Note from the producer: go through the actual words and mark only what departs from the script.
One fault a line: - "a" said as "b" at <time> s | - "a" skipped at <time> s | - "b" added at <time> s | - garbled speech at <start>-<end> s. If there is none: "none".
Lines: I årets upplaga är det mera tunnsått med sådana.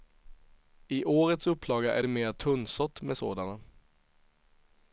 none